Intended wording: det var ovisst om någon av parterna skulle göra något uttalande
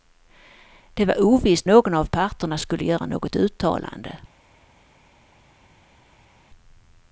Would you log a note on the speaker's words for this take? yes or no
yes